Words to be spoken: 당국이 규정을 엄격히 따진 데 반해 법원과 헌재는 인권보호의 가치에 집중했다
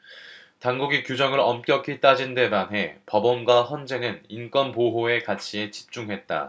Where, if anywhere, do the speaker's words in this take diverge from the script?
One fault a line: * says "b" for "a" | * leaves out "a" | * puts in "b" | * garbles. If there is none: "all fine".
all fine